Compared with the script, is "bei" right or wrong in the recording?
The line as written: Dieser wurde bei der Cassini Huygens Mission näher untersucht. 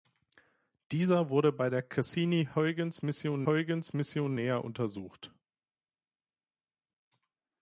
right